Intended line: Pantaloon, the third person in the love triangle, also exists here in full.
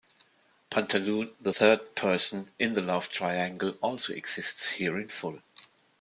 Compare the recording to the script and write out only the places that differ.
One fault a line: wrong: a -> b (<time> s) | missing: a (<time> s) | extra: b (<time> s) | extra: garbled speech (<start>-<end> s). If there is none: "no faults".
no faults